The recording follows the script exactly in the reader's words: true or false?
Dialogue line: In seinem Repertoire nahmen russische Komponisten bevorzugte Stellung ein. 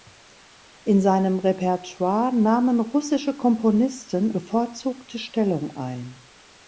true